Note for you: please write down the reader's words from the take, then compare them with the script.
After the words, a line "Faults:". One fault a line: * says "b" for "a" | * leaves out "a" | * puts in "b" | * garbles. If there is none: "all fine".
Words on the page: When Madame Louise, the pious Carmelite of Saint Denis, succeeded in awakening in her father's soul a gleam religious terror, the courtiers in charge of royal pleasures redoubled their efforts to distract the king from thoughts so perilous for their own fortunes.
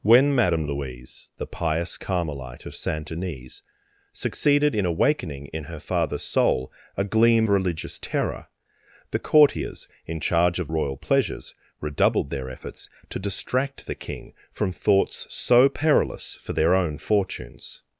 When Madame Louise, the pious Carmelite of Saint Denis, succeeded in awakening in her father's soul a gleam religious terror, the courtiers in charge of royal pleasures redoubled their efforts to distract the king from thoughts so perilous for their own fortunes.
Faults:
all fine